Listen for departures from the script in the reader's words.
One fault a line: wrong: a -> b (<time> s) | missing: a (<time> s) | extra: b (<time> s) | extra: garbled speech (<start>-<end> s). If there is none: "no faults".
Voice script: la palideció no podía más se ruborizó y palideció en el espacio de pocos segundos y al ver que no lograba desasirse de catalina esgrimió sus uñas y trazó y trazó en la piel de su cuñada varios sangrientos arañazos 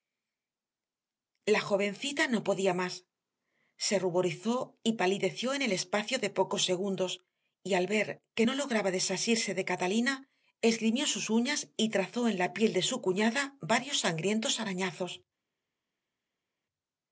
wrong: palideció -> jovencita (1.7 s)
missing: y trazó (12.3 s)